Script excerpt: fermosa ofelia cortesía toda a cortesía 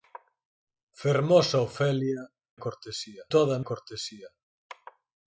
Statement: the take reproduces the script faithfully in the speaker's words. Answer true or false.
true